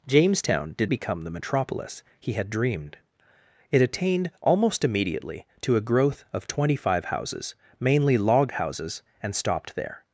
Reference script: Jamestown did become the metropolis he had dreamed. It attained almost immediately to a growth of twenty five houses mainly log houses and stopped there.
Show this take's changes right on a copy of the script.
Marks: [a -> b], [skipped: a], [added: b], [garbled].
Jamestown did become the metropolis he had dreamed. It attained almost immediately to a growth of twenty five houses mainly log houses and stopped there.